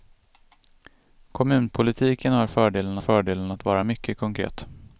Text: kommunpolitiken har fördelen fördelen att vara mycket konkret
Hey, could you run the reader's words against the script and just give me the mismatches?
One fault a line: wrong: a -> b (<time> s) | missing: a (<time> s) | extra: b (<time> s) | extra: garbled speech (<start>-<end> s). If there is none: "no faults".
no faults